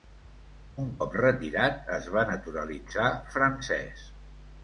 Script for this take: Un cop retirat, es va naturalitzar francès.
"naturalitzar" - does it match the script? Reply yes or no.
yes